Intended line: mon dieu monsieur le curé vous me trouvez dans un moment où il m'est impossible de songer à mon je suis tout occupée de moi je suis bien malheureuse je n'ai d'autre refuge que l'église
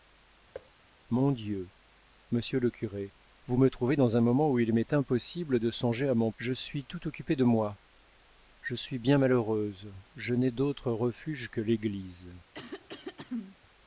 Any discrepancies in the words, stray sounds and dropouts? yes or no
yes